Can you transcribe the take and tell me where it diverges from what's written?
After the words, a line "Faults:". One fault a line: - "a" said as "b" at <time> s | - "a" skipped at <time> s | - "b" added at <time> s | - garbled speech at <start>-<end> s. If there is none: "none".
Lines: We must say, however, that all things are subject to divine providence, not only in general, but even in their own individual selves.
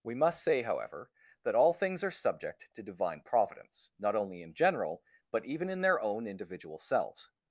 We must say, however, that all things are subject to divine providence, not only in general, but even in their own individual selves.
Faults:
none